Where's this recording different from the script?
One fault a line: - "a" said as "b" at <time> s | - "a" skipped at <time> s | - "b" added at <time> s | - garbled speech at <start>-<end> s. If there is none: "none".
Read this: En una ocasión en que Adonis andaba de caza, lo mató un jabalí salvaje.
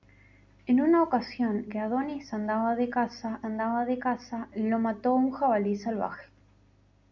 - "en" skipped at 1.7 s
- "andaba de caza" added at 3.4 s